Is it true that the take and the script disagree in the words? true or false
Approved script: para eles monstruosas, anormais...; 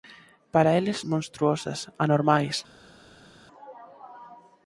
false